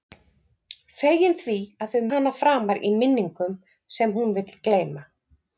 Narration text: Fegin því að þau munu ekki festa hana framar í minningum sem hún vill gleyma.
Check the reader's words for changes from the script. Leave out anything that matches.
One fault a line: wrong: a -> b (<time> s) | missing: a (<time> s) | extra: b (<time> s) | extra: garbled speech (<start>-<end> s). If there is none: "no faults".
missing: munu ekki festa (2.0 s)